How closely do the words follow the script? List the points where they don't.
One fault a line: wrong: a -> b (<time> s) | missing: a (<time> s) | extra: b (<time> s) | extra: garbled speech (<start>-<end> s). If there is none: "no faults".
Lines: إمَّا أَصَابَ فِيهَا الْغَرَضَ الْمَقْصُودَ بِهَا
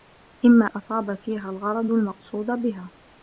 no faults